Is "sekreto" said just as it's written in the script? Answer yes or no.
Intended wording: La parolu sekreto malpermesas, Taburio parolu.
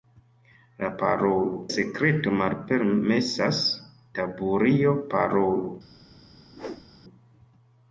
yes